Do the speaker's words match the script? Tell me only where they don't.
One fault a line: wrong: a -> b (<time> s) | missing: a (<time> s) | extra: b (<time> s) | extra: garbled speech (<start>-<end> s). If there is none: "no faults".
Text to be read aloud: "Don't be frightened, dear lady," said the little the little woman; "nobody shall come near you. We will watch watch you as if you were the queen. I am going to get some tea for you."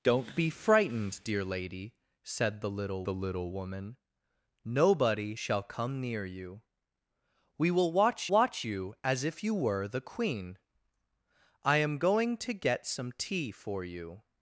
no faults